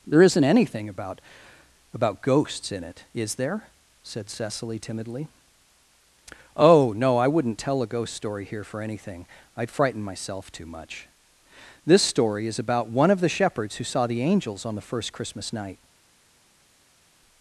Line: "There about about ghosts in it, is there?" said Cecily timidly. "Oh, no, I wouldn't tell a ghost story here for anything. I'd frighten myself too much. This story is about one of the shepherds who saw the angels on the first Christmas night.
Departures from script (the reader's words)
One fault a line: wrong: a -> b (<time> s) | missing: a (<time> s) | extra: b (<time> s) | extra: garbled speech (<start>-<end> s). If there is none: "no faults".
extra: isn't anything (0.2 s)